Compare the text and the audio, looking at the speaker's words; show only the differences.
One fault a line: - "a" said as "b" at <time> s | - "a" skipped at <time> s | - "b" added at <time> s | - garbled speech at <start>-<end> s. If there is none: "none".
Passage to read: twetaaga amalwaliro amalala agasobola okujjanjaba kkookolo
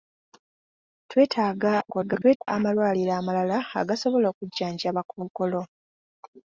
- garbled speech at 1.8-2.5 s